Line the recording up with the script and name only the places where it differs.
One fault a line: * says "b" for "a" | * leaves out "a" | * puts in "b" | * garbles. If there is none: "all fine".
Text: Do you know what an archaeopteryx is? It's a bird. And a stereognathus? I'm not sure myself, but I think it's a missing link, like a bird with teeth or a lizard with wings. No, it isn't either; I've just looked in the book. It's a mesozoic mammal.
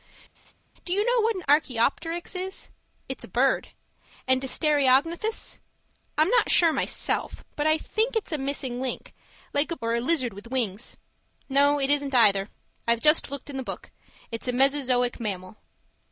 * leaves out "bird with teeth"